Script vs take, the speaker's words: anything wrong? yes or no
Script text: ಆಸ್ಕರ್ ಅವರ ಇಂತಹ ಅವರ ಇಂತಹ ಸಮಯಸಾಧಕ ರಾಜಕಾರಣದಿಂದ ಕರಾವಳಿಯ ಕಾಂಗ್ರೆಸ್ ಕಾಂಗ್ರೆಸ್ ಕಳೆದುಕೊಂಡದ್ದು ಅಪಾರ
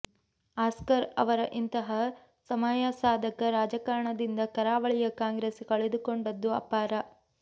yes